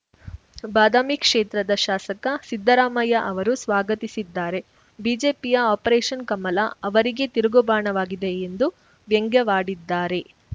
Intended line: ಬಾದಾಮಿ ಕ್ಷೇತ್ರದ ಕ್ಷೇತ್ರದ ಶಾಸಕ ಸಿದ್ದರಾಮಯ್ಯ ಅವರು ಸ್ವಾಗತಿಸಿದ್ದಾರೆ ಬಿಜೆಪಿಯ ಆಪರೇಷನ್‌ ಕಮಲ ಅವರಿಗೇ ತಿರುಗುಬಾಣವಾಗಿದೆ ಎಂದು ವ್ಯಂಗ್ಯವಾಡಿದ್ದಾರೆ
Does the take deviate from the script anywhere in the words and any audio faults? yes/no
yes